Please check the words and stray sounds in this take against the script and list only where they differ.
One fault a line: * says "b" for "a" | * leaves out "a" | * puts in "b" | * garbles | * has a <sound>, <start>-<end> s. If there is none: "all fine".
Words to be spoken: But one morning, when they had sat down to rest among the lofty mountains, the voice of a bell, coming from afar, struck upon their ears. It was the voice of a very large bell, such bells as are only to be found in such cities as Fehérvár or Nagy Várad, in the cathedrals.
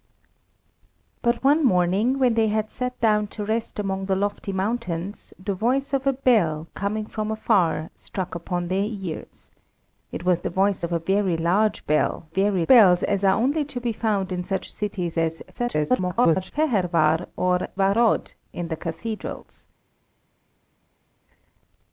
* says "very" for "such"
* garbles
* leaves out "Nagy"